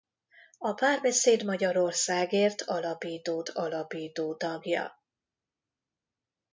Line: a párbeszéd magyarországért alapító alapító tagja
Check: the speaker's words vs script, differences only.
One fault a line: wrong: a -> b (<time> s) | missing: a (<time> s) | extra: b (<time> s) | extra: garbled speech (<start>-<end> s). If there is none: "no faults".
no faults